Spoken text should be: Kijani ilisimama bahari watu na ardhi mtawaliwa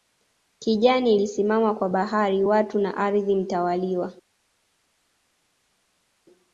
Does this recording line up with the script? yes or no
no